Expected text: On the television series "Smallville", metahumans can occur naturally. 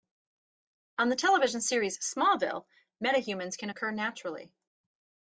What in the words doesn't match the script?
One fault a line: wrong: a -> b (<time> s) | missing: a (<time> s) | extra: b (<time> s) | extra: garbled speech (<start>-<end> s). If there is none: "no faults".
no faults